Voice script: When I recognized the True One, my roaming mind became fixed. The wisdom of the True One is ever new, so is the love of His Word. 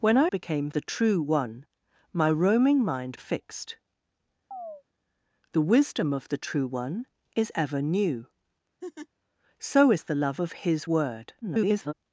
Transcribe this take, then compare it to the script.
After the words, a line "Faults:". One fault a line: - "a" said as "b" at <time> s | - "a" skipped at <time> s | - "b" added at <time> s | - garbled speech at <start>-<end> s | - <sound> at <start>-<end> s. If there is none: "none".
When I became the True One, my roaming mind fixed. The wisdom of the True One is ever new, so is the love of His Word. [garbled]
Faults:
- "recognized" said as "became" at 0.3 s
- "became" skipped at 3.2 s
- chirp at 4.5-4.8 s
- laugh at 8.8-9.1 s
- garbled speech at 11.4-11.9 s